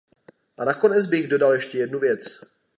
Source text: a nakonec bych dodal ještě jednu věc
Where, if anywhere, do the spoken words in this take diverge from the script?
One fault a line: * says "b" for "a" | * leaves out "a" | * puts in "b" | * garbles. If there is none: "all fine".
all fine